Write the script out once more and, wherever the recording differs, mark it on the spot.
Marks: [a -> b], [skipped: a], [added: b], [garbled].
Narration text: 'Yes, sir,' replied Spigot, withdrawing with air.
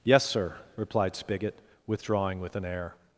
'Yes, sir,' replied Spigot, withdrawing with [added: an] air.